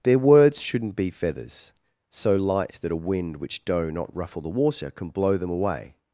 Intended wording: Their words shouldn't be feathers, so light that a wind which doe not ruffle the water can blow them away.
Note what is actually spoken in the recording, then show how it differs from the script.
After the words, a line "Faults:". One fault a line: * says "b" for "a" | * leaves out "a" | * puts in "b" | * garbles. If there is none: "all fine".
Their words shouldn't be feathers, so light that a wind which doe not ruffle the water can blow them away.
Faults:
all fine